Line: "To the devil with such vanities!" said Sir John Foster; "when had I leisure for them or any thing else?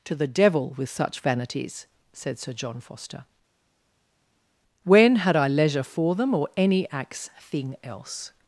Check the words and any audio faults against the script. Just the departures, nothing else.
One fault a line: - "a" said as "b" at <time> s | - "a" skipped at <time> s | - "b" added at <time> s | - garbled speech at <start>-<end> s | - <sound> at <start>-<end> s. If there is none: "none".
- "axe" added at 6.9 s